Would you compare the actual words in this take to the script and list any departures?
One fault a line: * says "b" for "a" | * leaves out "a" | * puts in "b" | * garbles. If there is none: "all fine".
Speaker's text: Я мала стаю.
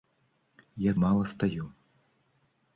all fine